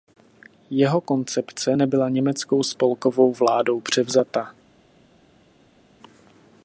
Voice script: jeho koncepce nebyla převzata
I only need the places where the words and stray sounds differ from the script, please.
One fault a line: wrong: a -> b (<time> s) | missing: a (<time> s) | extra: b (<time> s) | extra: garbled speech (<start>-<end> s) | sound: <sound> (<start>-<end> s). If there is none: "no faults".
extra: německou spolkovou vládou (2.1 s)